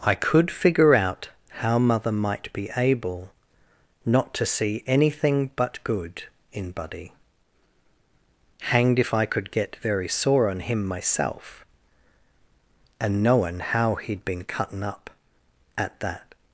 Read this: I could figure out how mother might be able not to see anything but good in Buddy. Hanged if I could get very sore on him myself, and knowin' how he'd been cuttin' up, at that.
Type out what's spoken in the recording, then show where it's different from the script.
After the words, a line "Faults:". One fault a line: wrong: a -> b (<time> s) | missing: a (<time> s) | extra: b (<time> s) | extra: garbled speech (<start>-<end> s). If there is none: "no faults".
I could figure out how mother might be able not to see anything but good in Buddy. Hanged if I could get very sore on him myself, and knowin' how he'd been cuttin' up, at that.
Faults:
no faults